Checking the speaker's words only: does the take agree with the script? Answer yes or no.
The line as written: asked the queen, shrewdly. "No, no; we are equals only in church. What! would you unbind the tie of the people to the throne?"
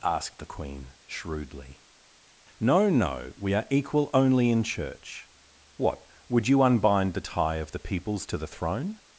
no